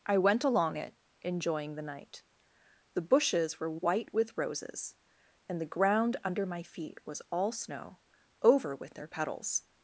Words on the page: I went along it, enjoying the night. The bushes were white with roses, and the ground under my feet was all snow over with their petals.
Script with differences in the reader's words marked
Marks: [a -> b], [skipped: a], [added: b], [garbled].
I went along it, enjoying the night. The bushes were white with roses, and the ground under my feet was all snow over with their petals.